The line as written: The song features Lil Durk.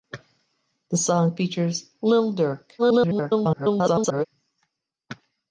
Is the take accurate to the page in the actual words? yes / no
no